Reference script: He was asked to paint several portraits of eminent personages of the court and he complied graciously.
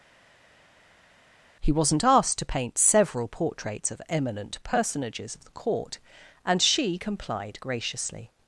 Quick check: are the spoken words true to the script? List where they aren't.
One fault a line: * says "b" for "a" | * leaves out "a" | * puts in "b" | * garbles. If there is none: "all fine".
* says "wasn't" for "was"
* says "she" for "he"